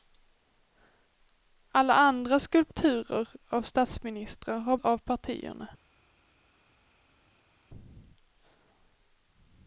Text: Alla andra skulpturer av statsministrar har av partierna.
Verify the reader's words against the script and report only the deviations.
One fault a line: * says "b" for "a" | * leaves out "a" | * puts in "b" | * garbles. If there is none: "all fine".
all fine